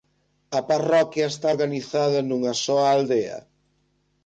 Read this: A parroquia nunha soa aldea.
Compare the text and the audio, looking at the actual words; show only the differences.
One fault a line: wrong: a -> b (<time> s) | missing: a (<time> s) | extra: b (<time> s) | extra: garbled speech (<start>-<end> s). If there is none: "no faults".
extra: está organizada (1.3 s)